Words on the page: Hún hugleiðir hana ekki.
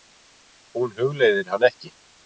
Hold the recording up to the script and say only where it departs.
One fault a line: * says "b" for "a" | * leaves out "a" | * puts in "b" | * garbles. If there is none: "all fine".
all fine